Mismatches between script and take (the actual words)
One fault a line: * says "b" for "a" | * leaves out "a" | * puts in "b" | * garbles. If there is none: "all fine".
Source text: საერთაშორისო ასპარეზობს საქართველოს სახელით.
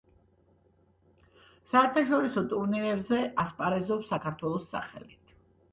* puts in "ტურნირებზე"